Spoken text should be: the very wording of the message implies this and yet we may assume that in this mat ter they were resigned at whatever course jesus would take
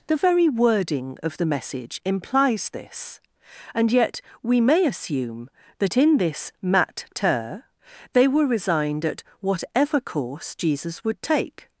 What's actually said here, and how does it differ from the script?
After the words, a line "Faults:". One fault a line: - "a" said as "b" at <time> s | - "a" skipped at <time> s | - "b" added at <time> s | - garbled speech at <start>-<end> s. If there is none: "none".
the very wording of the message implies this and yet we may assume that in this mat ter they were resigned at whatever course jesus would take
Faults:
none